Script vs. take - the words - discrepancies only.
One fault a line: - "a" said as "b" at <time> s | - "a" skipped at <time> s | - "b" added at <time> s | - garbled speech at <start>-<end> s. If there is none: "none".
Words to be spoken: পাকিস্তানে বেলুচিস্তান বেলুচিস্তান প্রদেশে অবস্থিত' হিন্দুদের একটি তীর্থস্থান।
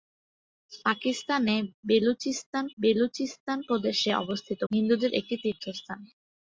none